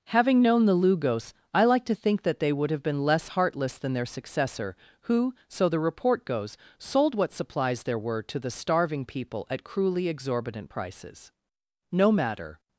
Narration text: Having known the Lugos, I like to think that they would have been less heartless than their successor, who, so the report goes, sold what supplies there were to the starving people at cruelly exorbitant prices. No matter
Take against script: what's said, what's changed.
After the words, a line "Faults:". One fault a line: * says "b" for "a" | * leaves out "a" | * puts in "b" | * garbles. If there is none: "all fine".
Having known the Lugos, I like to think that they would have been less heartless than their successor, who, so the report goes, sold what supplies there were to the starving people at cruelly exorbitant prices. No matter
Faults:
all fine